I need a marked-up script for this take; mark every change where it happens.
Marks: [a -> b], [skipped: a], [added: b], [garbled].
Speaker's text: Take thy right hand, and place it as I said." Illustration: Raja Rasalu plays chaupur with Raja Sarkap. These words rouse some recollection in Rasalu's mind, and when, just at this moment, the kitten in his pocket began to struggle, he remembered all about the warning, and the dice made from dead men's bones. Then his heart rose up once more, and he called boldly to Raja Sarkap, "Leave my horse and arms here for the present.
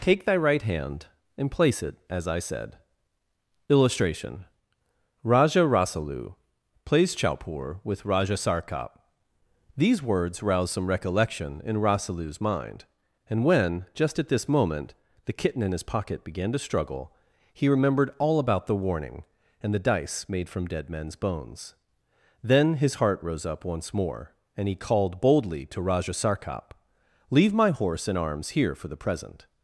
Take thy right hand, and place it as I said." Illustration: Raja Rasalu plays chaupur with Raja Sarkap. These words rouse some recollection in Rasalu's mind, and when, just at this moment, the kitten in his pocket began to struggle, he remembered all about the warning, and the dice made from dead men's bones. Then his heart rose up once more, and he called boldly to Raja Sarkap, "Leave my horse and arms here for the present.